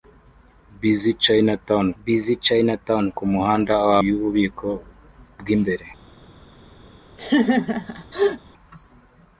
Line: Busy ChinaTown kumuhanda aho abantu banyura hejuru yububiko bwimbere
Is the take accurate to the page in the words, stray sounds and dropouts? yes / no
no